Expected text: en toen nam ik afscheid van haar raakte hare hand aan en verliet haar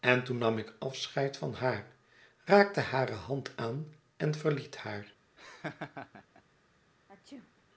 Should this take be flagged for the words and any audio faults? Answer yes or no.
yes